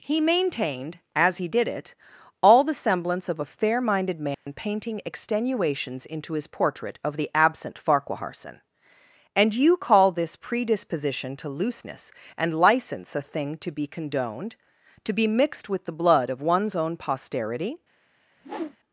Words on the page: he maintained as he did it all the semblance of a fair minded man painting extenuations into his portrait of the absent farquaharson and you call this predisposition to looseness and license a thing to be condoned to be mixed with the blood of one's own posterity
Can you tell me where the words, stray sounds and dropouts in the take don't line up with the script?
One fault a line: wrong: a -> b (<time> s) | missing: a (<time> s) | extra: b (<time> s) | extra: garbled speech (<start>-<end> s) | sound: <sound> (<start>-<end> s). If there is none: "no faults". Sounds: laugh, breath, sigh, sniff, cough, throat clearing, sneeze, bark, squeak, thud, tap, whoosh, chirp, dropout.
sound: dropout (4.3-4.5 s)
sound: whoosh (18.4-18.8 s)